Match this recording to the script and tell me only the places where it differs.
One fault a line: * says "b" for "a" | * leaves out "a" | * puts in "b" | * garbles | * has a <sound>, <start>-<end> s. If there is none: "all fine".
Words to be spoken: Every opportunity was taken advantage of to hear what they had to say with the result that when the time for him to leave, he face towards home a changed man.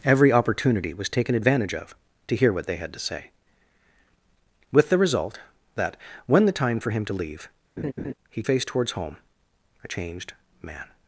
* has a laugh, 7.8-8.1 s